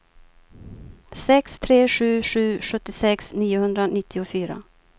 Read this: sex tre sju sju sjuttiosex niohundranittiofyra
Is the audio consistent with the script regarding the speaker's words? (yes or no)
yes